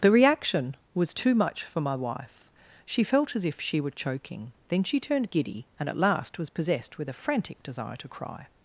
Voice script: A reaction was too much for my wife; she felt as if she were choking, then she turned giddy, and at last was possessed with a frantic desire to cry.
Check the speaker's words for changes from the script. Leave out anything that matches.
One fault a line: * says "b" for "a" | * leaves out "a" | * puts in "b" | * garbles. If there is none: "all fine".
* says "The" for "A"